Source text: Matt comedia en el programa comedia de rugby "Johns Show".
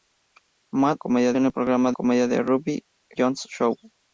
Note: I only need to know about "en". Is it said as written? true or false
true